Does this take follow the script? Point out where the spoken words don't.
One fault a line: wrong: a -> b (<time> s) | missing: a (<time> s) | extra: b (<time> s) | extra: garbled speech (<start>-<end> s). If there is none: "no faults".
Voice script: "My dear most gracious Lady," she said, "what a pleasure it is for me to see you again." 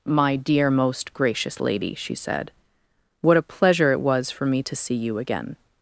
wrong: is -> was (4.0 s)